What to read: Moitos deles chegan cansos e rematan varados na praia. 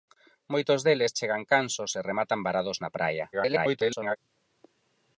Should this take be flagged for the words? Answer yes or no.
yes